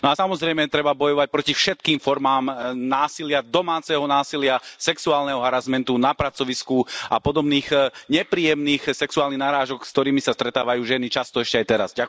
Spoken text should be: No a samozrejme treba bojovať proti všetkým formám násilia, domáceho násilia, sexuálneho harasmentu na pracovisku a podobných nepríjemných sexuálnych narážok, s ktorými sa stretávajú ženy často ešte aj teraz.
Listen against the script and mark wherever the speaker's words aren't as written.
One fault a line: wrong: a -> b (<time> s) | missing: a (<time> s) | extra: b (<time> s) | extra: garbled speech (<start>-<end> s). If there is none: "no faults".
no faults